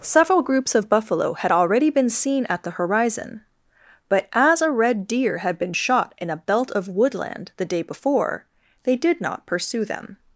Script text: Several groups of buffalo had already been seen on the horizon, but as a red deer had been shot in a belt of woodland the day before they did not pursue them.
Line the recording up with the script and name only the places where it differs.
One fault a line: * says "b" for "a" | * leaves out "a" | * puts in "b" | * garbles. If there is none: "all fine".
* says "at" for "on"